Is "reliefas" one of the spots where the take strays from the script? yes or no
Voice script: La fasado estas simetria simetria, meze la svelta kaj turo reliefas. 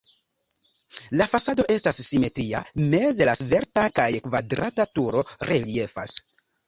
no